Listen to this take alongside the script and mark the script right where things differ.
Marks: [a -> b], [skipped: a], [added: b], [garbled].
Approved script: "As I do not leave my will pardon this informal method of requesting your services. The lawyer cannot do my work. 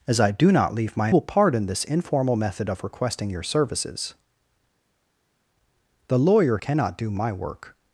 "As I do not leave my will pardon this informal method of requesting your services. The lawyer cannot do my work.